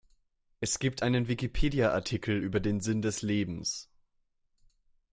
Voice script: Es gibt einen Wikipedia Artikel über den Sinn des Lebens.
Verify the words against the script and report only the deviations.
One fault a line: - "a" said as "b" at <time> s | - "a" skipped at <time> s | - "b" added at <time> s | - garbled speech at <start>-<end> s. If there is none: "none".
none